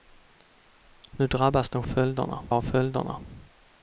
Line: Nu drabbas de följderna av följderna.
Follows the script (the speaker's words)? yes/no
yes